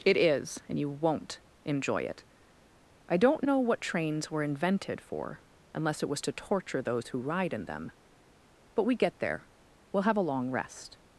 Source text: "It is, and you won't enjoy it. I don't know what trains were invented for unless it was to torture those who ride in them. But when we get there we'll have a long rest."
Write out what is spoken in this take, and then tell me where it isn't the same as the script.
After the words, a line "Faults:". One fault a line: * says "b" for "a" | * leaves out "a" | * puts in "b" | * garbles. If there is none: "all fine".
"It is, and you won't enjoy it. I don't know what trains were invented for unless it was to torture those who ride in them. But we get there we'll have a long rest."
Faults:
* leaves out "when"